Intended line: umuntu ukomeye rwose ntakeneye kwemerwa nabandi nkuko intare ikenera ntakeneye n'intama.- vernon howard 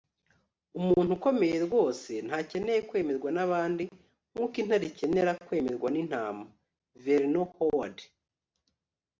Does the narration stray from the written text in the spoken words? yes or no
yes